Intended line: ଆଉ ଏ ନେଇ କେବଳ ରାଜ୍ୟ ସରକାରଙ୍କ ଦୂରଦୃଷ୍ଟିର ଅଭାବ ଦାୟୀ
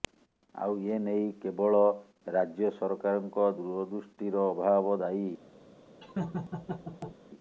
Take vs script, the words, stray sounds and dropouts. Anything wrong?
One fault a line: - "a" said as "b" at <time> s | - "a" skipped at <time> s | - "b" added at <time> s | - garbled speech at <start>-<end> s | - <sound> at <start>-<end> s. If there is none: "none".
- laugh at 6.0-7.2 s